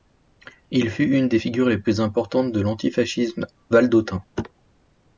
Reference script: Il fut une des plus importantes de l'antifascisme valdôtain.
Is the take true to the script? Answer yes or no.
no